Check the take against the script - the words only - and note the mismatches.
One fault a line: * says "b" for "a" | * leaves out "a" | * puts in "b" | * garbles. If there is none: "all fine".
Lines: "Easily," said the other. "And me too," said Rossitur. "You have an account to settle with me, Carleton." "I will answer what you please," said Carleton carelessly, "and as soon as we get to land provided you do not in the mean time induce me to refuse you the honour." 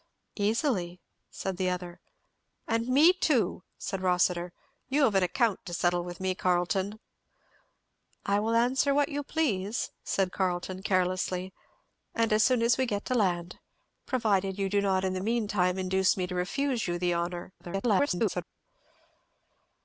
* garbles